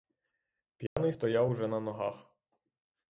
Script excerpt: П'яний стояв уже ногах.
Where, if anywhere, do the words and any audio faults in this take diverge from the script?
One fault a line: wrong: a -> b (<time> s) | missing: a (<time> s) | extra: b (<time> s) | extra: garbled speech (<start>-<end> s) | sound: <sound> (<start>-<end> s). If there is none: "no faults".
sound: dropout (0.9-1.0 s)
extra: на (1.7 s)